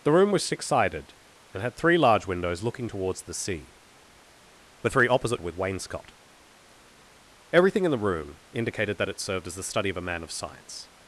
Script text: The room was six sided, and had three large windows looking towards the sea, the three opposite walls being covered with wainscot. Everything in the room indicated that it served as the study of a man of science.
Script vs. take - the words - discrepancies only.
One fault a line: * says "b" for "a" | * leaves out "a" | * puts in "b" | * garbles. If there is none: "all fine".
* leaves out "walls being covered"